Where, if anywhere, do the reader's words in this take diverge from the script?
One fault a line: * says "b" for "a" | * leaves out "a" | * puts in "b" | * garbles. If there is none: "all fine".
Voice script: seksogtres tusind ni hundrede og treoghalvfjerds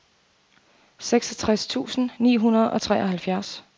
all fine